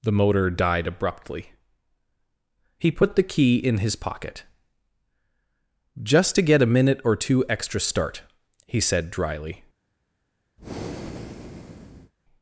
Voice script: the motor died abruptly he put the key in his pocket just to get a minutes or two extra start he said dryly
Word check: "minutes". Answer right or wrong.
wrong